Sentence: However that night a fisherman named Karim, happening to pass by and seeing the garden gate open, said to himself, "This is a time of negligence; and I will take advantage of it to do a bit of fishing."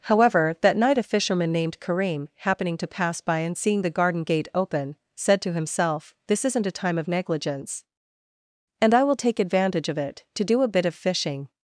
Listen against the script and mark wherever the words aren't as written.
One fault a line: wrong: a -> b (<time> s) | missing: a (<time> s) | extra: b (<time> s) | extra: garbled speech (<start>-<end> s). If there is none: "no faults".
wrong: is -> isn't (6.4 s)